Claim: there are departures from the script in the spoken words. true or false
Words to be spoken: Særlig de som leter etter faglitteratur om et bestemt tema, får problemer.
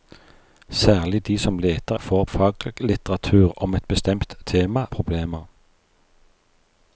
true